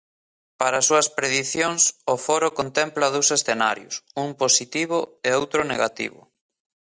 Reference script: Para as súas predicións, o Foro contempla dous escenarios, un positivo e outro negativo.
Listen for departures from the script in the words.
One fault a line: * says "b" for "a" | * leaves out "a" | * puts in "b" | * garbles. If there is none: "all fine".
all fine